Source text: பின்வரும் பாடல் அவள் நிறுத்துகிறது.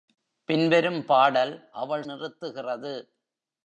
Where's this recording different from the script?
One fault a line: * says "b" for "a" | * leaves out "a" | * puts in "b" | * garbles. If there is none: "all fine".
all fine